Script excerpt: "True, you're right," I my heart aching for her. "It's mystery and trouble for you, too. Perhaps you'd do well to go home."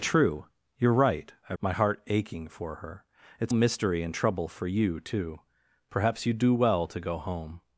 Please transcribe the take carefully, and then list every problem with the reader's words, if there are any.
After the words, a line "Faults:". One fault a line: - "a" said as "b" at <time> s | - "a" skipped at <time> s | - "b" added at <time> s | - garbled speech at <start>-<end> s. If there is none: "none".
"True, you're right," I my heart aching for her. "It's mystery and trouble for you, too. Perhaps you'd do well to go home."
Faults:
none